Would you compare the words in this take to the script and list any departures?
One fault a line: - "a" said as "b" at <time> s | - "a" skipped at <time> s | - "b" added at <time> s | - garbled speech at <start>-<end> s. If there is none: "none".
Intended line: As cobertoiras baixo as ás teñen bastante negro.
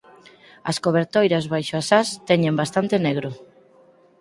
none